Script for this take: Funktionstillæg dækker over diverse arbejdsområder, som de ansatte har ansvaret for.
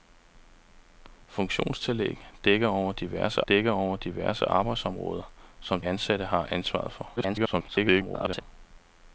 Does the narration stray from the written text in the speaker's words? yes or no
yes